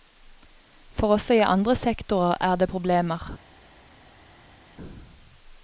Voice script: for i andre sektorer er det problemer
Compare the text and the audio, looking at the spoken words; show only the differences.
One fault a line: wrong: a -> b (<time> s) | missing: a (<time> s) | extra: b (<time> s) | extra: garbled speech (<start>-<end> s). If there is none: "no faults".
extra: også (1.1 s)